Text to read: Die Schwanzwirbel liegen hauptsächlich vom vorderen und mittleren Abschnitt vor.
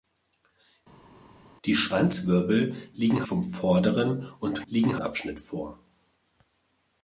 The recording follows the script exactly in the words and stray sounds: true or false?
false